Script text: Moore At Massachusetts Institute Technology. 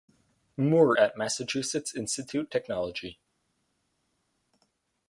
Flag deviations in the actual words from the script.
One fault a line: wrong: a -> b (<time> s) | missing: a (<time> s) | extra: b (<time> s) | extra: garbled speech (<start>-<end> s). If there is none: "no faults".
no faults